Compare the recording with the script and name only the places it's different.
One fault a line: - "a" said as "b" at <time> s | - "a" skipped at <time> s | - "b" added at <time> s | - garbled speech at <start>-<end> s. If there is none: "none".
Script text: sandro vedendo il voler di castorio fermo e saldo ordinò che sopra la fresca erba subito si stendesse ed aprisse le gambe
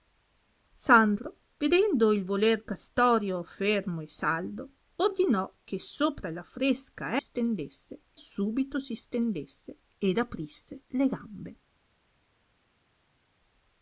- "di" skipped at 2.6 s
- "erba" said as "stendesse" at 7.2 s